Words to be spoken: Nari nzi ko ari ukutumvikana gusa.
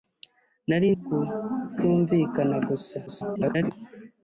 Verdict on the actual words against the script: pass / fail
fail